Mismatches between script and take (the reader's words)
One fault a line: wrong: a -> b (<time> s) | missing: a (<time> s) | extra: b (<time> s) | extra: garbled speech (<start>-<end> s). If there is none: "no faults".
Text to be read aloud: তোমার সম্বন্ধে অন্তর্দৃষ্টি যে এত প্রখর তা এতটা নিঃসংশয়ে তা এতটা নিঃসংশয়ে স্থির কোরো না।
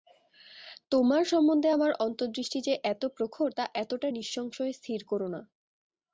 extra: আমার (1.7 s)
missing: তা এতটা নিঃসংশয়ে (4.7 s)